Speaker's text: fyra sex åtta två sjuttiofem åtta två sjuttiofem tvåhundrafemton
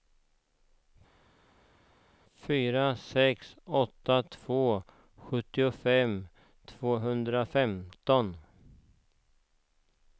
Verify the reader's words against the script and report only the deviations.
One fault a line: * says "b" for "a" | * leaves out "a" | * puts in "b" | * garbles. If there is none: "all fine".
* leaves out "åtta två sjuttiofem"